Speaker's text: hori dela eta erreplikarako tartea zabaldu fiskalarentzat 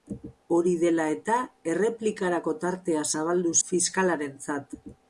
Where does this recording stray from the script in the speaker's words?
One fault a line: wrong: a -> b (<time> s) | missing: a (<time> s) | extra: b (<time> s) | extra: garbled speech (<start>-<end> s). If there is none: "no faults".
no faults